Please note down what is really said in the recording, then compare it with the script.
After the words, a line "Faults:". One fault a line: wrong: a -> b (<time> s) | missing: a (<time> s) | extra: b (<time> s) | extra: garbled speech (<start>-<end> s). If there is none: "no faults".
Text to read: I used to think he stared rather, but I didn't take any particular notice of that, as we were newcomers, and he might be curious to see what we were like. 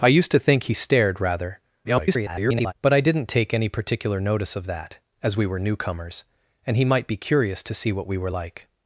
I used to think he stared rather, [garbled] but I didn't take any particular notice of that, as we were newcomers, and he might be curious to see what we were like.
Faults:
extra: garbled speech (1.8-2.7 s)